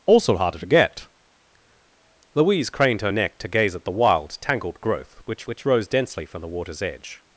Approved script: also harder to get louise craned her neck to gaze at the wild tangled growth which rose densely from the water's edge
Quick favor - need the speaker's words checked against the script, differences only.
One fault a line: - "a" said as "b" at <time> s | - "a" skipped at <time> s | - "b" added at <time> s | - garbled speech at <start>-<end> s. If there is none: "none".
- "which" added at 5.4 s